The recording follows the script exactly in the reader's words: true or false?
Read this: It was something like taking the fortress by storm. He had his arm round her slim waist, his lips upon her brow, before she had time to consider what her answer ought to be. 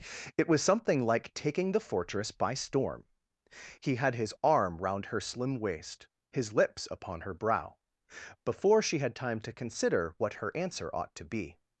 true